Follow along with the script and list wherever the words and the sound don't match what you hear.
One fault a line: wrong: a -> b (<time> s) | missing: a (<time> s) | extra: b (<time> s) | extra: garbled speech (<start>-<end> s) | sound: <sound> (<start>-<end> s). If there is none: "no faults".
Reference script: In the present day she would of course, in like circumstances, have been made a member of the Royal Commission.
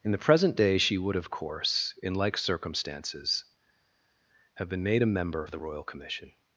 missing: of (5.5 s)